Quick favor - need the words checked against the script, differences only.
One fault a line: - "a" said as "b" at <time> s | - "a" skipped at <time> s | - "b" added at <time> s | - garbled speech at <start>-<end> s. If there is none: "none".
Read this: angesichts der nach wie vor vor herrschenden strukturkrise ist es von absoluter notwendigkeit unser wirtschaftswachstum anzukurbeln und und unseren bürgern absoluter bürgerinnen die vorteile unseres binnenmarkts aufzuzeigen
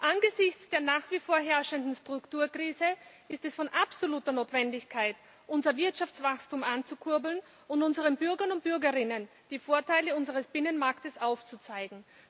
- "vor" skipped at 1.4 s
- "und" skipped at 7.8 s
- "absoluter" said as "und" at 8.5 s